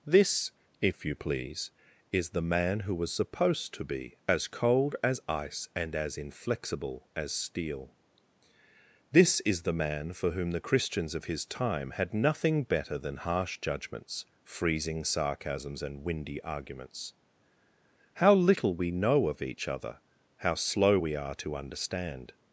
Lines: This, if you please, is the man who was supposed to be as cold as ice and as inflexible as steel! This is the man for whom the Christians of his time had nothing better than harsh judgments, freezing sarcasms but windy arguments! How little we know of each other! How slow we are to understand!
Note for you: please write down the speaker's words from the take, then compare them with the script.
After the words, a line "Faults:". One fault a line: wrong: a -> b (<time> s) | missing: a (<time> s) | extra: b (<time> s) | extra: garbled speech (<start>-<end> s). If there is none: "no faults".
This, if you please, is the man who was supposed to be as cold as ice and as inflexible as steel! This is the man for whom the Christians of his time had nothing better than harsh judgments, freezing sarcasms and windy arguments! How little we know of each other! How slow we are to understand!
Faults:
wrong: but -> and (15.8 s)